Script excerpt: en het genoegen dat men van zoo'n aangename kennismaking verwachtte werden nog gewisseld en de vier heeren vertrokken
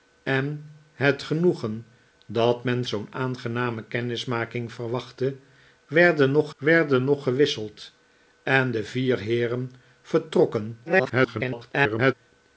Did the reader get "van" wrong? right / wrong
wrong